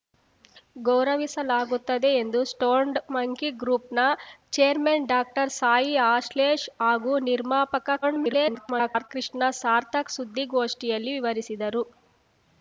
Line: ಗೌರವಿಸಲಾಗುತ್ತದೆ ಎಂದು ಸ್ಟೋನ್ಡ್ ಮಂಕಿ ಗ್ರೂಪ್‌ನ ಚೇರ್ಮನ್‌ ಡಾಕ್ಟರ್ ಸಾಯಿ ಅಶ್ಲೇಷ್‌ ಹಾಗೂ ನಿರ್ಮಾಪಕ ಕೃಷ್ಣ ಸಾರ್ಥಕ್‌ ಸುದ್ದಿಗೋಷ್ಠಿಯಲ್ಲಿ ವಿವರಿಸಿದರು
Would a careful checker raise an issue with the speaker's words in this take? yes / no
yes